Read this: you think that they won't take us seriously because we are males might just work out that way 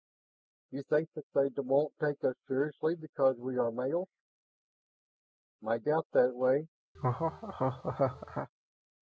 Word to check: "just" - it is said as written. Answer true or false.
false